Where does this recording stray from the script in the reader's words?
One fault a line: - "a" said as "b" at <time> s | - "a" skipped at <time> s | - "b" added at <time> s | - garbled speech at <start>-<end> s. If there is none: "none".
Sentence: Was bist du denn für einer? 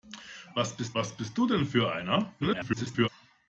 - "was bist" added at 0.9 s
- garbled speech at 2.4-3.1 s